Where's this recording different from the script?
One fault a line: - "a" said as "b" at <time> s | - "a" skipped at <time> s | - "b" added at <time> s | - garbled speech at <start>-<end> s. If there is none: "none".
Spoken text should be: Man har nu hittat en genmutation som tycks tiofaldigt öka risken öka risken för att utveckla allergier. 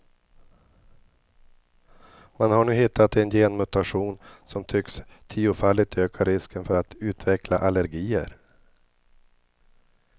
- "öka risken" skipped at 6.7 s